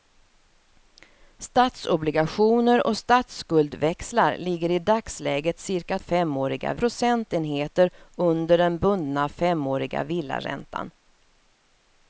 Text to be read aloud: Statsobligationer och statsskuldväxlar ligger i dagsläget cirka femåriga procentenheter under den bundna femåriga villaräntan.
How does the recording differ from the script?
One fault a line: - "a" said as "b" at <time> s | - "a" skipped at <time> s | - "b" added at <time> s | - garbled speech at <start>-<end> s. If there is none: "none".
none